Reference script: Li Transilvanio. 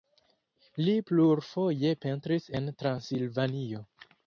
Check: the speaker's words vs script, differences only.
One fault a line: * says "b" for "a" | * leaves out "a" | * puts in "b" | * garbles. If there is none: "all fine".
* puts in "plurfoje pentris en"